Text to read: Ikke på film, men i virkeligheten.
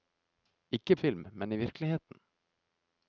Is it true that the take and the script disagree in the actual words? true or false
true